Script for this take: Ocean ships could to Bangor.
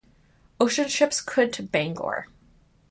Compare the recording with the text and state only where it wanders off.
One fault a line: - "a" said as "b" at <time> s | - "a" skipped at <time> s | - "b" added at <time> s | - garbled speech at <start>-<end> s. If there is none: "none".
none